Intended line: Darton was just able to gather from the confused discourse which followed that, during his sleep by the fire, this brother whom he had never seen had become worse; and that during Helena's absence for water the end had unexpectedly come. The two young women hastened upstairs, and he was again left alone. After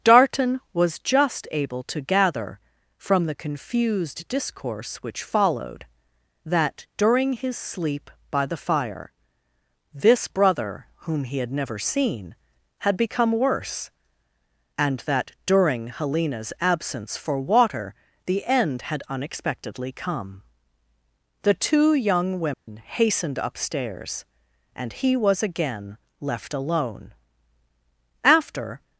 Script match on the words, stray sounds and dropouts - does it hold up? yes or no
no